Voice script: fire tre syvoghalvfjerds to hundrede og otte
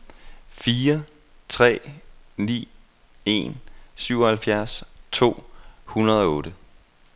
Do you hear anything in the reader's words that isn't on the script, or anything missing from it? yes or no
yes